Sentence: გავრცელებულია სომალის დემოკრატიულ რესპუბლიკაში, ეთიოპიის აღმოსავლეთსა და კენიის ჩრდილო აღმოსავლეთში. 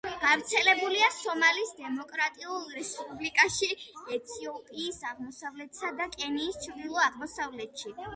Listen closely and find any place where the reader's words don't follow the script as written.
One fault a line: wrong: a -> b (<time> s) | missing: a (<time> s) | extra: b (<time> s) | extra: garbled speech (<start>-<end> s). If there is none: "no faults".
no faults